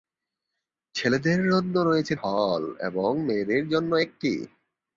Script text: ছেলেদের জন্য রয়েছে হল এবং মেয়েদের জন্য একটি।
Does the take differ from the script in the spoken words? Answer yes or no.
no